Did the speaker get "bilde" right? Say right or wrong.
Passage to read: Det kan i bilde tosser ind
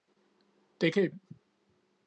wrong